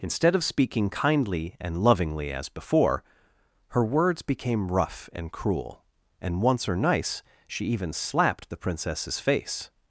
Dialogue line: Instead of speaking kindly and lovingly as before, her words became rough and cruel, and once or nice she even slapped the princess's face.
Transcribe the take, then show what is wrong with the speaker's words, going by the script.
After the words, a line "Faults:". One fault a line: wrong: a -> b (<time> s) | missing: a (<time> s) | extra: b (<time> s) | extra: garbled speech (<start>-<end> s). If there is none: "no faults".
Instead of speaking kindly and lovingly as before, her words became rough and cruel, and once or nice she even slapped the princess's face.
Faults:
no faults